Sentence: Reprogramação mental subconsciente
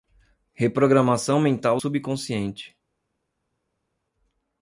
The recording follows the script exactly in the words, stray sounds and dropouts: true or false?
true